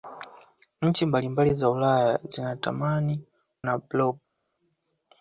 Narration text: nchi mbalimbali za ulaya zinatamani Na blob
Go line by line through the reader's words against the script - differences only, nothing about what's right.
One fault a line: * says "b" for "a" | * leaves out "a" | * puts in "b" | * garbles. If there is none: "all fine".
all fine